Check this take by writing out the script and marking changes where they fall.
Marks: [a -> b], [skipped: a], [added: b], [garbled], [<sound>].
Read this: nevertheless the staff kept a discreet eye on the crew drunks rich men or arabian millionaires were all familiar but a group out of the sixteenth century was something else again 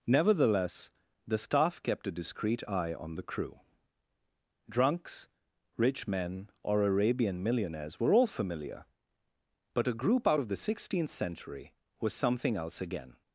nevertheless the staff kept a discreet eye on the crew drunks rich men or arabian millionaires were all familiar but a group out of the sixteenth century was something else again